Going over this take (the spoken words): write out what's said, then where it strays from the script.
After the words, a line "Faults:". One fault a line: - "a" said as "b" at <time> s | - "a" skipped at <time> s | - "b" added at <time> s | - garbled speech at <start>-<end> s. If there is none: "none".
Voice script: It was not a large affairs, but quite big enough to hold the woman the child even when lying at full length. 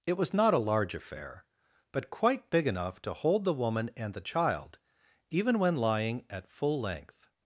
It was not a large affair, but quite big enough to hold the woman and the child even when lying at full length.
Faults:
- "affairs" said as "affair" at 0.9 s
- "and" added at 4.0 s